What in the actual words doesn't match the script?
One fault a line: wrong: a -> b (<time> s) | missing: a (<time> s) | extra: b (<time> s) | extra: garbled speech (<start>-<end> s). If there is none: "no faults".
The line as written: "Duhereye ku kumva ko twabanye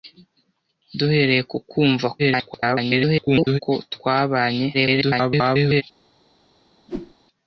extra: garbled speech (2.2-3.6 s)
extra: garbled speech (4.7-5.8 s)